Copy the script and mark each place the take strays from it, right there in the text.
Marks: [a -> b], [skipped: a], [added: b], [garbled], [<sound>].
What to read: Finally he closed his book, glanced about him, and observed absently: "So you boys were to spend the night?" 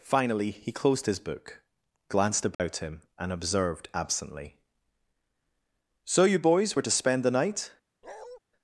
Finally he closed his book, glanced about [dropout] him, and observed absently: "So you boys were to spend the night?" [bark]